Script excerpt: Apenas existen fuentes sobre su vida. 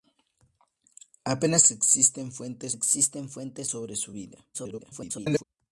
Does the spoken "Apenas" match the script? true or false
true